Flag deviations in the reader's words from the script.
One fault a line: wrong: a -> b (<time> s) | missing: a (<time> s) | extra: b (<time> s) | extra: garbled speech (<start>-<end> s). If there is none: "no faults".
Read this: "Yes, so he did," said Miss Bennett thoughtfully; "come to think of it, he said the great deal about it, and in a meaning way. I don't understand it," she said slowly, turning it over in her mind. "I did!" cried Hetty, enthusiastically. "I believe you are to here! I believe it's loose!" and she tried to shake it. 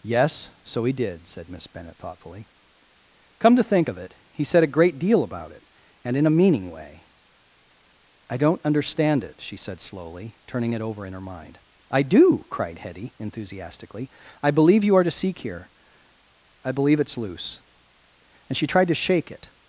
wrong: the -> a (4.6 s)
wrong: did -> do (12.0 s)
extra: seek (15.1 s)